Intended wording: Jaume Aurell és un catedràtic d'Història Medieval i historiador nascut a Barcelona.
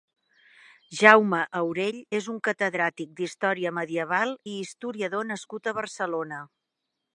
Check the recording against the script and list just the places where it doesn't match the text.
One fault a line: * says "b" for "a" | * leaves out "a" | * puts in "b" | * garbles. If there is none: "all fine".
all fine